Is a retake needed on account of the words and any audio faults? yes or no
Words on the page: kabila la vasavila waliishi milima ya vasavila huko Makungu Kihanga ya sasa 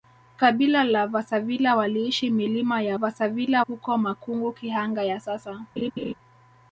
yes